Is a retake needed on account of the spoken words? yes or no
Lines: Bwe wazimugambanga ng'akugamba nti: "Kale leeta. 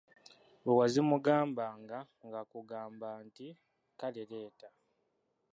no